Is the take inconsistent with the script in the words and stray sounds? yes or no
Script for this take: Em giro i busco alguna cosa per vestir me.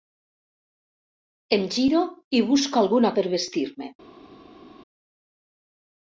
yes